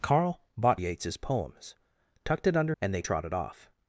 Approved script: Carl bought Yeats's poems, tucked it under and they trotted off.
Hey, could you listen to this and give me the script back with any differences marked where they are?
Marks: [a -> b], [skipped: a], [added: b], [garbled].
Carl bought Yeats's poems, tucked it under and they trotted off.